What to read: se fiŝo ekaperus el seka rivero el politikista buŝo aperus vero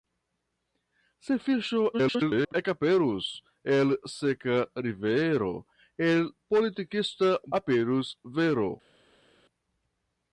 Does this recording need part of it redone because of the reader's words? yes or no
yes